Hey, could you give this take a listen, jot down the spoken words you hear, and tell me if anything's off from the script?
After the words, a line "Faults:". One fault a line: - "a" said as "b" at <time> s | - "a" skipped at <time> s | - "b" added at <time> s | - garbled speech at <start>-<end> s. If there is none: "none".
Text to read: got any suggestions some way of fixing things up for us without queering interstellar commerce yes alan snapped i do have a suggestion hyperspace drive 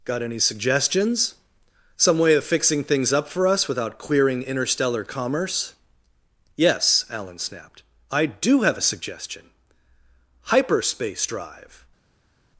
got any suggestions some way of fixing things up for us without queering interstellar commerce yes alan snapped i do have a suggestion hyperspace drive
Faults:
none